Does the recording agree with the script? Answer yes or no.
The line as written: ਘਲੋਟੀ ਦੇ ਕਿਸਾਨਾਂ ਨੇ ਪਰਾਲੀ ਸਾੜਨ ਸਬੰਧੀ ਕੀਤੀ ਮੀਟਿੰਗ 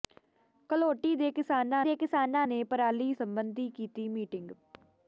no